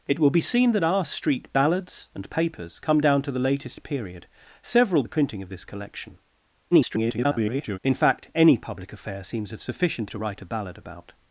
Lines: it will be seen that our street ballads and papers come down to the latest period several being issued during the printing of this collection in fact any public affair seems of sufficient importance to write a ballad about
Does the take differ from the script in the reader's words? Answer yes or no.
yes